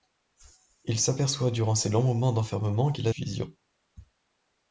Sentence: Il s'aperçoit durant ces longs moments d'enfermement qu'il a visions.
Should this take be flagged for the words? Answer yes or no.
no